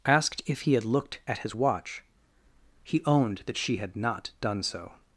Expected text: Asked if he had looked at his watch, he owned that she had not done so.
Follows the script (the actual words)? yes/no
yes